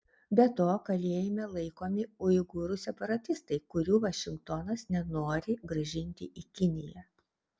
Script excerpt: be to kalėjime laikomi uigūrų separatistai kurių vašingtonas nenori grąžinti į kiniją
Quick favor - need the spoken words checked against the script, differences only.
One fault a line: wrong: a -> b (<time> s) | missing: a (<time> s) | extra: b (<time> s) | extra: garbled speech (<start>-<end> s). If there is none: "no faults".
no faults